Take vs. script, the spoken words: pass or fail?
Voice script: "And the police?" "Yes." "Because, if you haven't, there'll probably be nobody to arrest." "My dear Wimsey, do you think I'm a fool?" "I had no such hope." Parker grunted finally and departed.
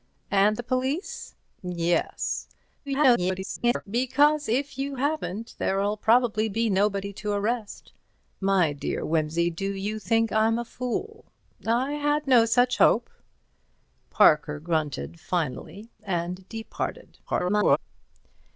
fail